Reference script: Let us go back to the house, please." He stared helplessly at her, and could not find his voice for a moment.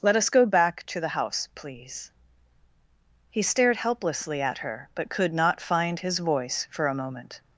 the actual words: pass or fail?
fail